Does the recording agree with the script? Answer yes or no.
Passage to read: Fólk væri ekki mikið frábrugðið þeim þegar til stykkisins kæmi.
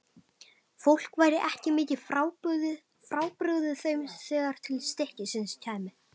yes